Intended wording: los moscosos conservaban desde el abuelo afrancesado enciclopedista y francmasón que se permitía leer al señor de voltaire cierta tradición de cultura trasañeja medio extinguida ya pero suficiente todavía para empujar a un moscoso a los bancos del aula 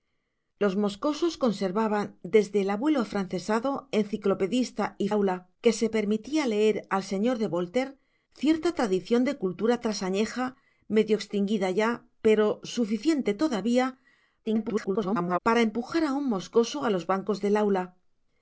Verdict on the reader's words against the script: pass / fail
fail